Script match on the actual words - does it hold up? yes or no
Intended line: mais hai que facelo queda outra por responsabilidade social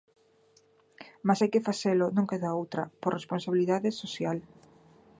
no